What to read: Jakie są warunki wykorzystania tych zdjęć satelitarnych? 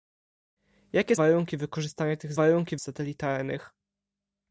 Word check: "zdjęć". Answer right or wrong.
wrong